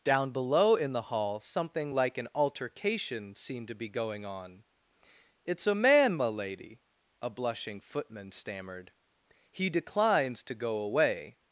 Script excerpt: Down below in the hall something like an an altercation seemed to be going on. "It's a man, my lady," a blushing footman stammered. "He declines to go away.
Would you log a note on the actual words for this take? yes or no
yes